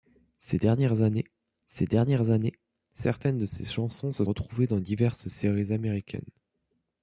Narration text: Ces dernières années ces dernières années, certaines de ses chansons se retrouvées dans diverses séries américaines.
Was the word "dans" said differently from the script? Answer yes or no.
no